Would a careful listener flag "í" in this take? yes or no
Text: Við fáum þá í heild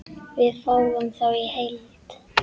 no